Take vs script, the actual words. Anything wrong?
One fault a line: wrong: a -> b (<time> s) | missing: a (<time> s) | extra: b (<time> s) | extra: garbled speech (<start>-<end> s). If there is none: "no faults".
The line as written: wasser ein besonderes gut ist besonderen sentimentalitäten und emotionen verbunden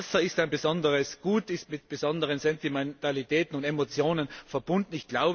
extra: ist (0.2 s)
extra: mit (1.7 s)